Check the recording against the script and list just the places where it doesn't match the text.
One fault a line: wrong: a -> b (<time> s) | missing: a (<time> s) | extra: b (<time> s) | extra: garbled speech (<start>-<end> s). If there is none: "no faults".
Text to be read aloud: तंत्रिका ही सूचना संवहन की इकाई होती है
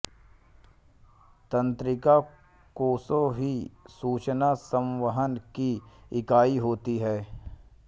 extra: कोशा (2.8 s)